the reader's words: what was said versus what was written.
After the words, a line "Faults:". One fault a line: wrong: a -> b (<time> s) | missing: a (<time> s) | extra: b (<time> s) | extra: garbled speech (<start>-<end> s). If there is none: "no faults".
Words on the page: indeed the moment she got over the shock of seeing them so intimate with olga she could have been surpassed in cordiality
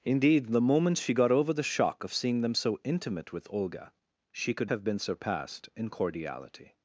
indeed the moment she got over the shock of seeing them so intimate with olga she could have been surpassed in cordiality
Faults:
no faults